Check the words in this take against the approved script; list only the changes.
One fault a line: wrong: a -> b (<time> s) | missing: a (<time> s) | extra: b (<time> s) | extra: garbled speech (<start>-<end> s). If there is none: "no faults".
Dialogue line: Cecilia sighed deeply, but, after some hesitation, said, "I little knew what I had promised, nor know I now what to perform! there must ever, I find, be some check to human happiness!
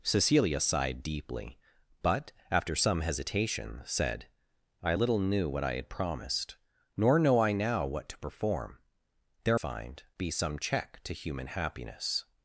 missing: must ever I (9.6 s)